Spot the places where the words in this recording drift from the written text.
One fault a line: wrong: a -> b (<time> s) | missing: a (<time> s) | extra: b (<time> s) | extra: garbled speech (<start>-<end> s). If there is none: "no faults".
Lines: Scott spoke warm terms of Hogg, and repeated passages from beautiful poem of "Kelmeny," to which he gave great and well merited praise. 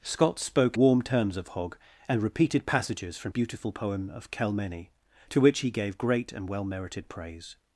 no faults